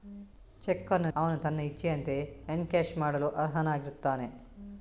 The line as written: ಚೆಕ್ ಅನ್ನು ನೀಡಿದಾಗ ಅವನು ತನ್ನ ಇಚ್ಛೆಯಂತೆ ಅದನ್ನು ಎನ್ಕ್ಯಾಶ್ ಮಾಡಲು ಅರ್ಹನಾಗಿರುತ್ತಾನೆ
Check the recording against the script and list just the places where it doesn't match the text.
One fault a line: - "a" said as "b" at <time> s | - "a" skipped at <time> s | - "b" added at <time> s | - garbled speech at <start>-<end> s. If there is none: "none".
- "ನೀಡಿದಾಗ" skipped at 1.1 s
- "ಅದನ್ನು" skipped at 2.2 s